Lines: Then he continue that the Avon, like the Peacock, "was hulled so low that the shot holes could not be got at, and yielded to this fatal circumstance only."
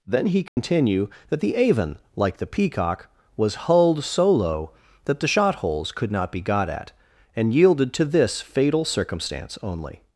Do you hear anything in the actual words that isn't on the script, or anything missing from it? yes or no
no